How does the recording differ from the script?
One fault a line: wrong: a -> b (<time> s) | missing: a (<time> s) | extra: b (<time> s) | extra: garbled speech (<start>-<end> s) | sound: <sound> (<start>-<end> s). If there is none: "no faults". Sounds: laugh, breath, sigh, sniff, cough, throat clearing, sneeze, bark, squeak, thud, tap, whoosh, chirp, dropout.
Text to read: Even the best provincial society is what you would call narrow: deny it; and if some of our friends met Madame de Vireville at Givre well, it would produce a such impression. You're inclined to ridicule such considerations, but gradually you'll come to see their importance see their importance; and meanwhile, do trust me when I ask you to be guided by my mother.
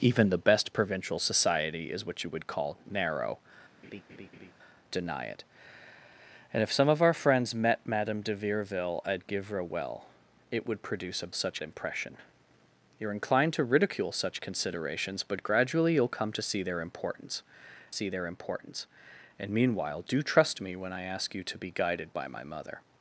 sound: laugh (3.8-4.5 s)